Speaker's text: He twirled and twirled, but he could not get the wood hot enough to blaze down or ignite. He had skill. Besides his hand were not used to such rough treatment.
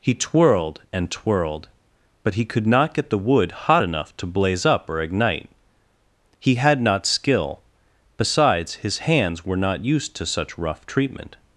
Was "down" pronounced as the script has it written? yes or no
no